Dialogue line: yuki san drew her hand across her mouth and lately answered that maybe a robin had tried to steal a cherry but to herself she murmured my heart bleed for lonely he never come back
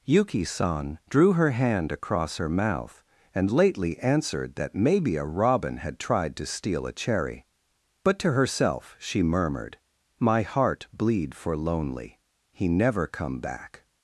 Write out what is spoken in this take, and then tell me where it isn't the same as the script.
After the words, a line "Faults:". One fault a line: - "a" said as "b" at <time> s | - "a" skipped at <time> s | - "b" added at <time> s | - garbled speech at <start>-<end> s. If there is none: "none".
yuki san drew her hand across her mouth and lately answered that maybe a robin had tried to steal a cherry but to herself she murmured my heart bleed for lonely he never come back
Faults:
none